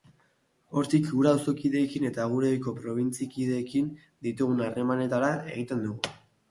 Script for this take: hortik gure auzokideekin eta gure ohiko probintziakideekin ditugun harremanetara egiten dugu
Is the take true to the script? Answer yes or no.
yes